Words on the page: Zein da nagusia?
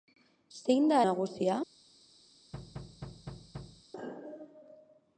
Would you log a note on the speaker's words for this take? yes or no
no